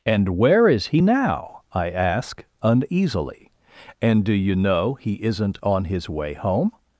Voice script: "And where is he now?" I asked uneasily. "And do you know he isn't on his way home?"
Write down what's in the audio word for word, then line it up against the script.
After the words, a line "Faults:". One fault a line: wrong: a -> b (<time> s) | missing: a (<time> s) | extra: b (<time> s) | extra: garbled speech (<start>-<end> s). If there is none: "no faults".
"And where is he now?" I ask uneasily. "And do you know he isn't on his way home?"
Faults:
wrong: asked -> ask (1.9 s)